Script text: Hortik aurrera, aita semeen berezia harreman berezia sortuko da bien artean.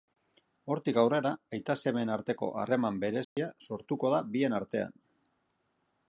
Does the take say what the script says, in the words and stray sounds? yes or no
no